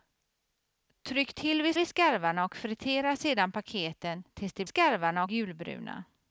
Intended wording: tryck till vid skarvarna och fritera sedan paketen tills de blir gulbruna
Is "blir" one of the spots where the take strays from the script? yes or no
yes